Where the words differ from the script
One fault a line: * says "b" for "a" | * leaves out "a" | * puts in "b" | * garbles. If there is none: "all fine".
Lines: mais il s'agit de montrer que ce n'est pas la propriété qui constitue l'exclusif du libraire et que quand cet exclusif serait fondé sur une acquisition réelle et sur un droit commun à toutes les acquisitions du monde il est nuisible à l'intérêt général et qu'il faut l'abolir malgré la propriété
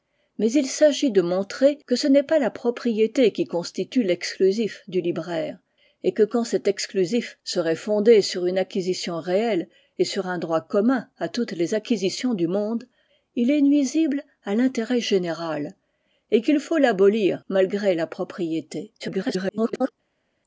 * garbles